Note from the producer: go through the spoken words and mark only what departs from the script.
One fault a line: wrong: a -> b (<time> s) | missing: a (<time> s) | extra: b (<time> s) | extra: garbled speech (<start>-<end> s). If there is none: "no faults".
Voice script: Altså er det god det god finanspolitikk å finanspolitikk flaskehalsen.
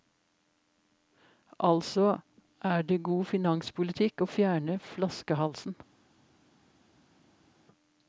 missing: det god (3.2 s)
wrong: finanspolitikk -> fjerne (4.4 s)